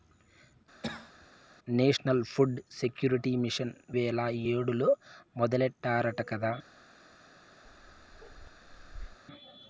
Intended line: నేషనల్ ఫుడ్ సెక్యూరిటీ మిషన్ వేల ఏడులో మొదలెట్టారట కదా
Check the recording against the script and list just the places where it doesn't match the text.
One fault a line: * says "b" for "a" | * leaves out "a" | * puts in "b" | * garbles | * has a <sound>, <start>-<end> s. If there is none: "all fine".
* has a cough, 0.8-1.3 s
* has a bark, 7.6-9.2 s